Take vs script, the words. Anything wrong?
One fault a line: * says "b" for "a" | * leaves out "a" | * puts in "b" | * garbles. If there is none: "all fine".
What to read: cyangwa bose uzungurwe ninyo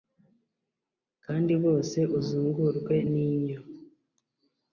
* says "kandi" for "cyangwa"